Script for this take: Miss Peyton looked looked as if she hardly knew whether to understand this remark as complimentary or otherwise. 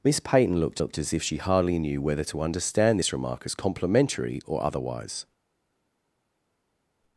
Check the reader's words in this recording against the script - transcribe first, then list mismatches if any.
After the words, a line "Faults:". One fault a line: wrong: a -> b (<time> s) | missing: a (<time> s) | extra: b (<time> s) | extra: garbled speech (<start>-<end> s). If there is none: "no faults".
Miss Peyton looked looked as if she hardly knew whether to understand this remark as complimentary or otherwise.
Faults:
no faults